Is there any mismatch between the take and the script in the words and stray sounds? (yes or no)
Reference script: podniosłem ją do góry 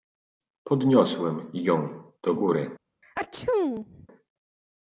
yes